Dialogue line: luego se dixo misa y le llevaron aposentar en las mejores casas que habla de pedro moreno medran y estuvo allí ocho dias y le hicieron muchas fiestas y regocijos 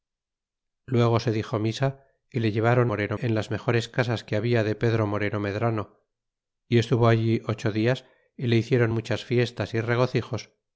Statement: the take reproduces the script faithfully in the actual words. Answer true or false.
false